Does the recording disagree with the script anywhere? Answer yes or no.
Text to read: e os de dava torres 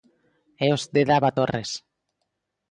no